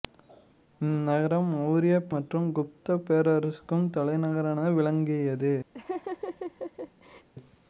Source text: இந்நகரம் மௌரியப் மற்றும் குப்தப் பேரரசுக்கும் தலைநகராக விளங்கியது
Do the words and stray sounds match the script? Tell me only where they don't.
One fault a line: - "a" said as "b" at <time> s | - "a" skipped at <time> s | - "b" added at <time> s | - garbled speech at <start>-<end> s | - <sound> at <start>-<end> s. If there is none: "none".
- laugh at 5.7-7.3 s